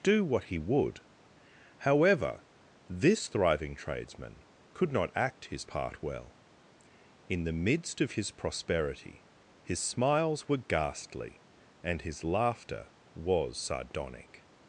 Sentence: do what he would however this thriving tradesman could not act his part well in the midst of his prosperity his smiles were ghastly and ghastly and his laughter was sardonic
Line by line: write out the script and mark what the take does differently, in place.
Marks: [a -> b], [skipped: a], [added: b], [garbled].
do what he would however this thriving tradesman could not act his part well in the midst of his prosperity his smiles were ghastly and [skipped: ghastly and] his laughter was sardonic